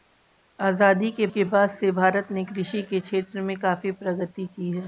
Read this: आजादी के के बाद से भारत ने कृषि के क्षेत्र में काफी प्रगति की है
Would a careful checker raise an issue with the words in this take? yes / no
no